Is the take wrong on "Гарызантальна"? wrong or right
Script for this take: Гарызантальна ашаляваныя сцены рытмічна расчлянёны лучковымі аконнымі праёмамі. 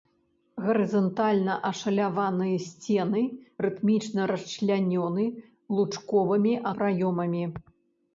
right